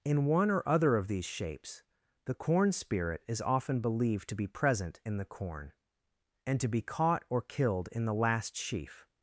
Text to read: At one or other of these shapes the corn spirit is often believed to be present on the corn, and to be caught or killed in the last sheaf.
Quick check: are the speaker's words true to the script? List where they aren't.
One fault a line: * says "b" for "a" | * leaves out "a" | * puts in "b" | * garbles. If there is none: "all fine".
* says "In" for "At"
* says "in" for "on"